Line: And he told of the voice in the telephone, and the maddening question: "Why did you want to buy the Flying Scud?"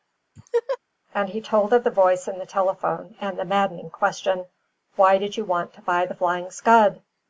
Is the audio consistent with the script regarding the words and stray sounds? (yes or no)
no